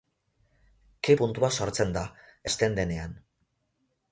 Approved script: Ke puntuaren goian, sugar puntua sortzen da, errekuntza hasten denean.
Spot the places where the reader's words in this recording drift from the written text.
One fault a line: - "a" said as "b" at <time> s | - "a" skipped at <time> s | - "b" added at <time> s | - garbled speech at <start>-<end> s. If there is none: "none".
- "puntuaren goian sugar" skipped at 1.1 s
- "errekuntza" skipped at 2.0 s